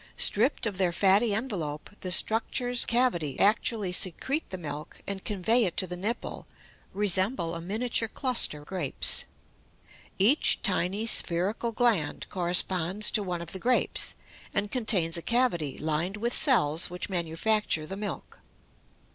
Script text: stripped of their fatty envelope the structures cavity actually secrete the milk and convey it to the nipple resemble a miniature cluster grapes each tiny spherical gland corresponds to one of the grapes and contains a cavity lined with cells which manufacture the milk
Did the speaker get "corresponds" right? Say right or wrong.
right